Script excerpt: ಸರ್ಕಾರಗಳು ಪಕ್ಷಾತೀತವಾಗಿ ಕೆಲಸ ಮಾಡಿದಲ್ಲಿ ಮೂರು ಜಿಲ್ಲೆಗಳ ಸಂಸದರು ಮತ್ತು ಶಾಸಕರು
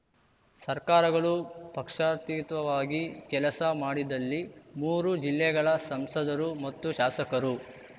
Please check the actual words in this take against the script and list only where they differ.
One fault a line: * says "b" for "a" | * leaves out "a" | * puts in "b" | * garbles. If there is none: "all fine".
all fine